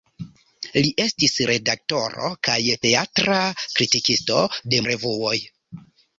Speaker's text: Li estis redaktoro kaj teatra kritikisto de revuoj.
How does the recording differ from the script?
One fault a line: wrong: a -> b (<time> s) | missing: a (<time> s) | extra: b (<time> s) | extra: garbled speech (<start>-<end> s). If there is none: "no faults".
no faults